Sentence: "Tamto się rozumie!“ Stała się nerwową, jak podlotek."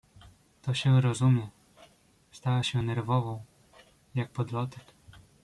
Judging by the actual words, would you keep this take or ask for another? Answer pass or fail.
fail